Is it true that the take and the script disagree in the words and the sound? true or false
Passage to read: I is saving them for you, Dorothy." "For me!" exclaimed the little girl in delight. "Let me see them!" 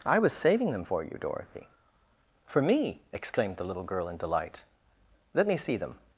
true